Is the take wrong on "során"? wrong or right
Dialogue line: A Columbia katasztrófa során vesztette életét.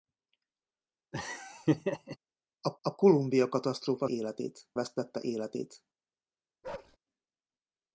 wrong